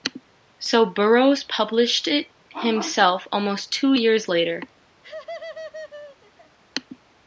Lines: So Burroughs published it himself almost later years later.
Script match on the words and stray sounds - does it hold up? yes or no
no